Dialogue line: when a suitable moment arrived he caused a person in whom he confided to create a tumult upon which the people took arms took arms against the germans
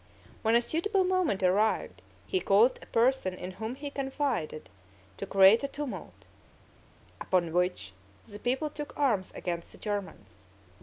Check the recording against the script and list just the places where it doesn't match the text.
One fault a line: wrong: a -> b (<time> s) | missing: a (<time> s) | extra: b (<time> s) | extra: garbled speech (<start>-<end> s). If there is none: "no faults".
missing: took arms (9.3 s)